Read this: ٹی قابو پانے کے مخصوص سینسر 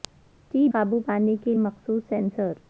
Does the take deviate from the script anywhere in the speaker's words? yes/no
no